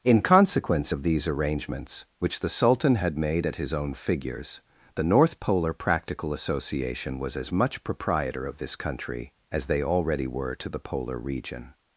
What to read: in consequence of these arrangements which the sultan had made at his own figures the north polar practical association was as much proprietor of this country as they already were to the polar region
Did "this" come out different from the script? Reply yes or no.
no